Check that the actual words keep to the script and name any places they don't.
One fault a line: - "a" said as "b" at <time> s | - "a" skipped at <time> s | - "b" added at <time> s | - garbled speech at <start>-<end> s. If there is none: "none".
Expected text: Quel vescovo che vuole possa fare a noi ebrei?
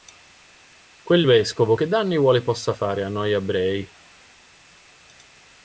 - "danni" added at 1.9 s